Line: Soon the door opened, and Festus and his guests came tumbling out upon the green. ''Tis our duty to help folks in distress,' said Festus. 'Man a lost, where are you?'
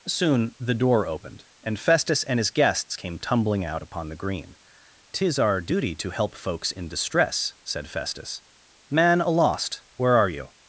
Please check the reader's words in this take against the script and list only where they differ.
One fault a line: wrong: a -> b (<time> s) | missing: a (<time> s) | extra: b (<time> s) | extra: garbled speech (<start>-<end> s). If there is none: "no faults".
no faults